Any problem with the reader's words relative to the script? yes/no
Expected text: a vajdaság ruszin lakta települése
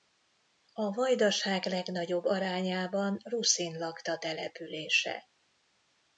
yes